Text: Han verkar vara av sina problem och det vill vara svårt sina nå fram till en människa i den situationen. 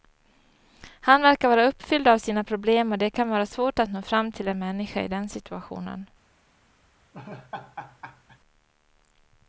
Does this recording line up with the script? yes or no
no